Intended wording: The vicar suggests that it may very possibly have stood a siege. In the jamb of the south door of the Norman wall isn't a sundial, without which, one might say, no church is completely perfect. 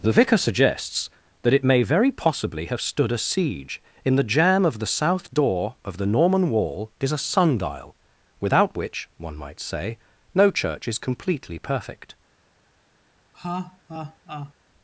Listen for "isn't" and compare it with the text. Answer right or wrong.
wrong